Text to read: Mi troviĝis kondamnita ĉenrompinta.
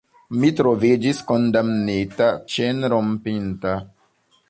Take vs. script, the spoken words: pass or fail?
pass